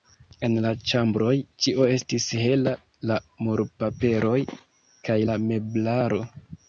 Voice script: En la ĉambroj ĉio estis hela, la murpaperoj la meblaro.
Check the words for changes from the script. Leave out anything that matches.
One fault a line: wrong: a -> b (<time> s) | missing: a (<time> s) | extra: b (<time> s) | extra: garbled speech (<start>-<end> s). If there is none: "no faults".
extra: kaj (5.1 s)